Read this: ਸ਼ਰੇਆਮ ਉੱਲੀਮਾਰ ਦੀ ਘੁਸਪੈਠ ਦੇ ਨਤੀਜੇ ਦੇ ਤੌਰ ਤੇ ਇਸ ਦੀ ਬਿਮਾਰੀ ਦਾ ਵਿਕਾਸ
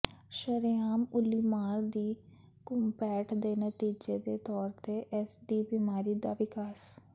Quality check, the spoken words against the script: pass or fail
pass